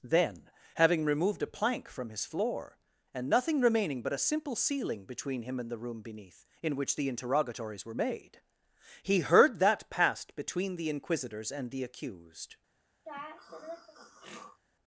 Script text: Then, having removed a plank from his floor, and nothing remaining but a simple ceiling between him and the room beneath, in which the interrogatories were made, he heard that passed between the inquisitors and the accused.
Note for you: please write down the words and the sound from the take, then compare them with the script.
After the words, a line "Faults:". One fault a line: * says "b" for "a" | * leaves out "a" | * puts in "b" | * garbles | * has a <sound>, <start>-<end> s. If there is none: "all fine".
Then, having removed a plank from his floor, and nothing remaining but a simple ceiling between him and the room beneath, in which the interrogatories were made, he heard that passed between the inquisitors and the accused.
Faults:
* has a throat clearing, 13.1-14.6 s